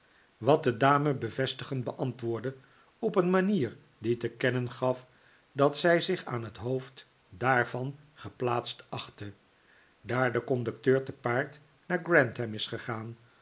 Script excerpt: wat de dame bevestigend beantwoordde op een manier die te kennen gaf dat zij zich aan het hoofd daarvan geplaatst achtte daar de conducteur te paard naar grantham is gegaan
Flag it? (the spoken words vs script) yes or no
no